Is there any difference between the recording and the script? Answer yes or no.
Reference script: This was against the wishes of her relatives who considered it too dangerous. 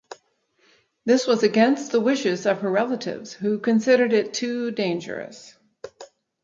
no